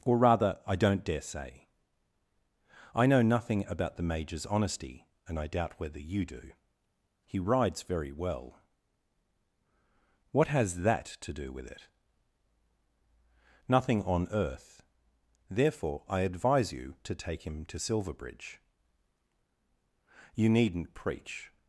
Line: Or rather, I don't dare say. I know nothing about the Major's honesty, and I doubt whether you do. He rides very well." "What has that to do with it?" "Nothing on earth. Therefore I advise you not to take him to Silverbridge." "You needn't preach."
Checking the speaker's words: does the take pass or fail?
fail